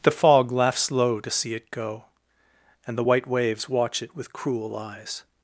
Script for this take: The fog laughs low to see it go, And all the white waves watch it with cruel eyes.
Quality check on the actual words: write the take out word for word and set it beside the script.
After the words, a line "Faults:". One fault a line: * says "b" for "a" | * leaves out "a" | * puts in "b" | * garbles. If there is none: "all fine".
The fog laughs low to see it go, And the white waves watch it with cruel eyes.
Faults:
* leaves out "all"